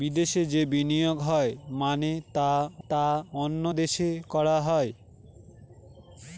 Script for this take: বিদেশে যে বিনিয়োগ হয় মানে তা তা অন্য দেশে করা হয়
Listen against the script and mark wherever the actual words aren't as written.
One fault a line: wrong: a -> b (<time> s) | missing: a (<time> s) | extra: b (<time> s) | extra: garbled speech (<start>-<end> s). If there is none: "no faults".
no faults